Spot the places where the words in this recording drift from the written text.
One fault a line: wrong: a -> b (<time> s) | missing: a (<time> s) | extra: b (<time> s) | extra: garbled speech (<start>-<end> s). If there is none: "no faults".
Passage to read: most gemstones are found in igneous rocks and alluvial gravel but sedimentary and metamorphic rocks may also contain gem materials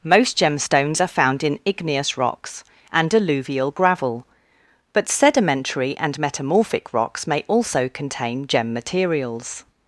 no faults